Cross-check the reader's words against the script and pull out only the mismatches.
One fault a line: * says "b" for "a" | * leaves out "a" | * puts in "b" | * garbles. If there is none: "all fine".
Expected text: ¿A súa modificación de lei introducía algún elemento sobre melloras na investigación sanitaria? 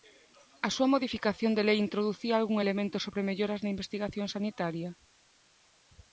all fine